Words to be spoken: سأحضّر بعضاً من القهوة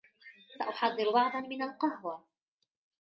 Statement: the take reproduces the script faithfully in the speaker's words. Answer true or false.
true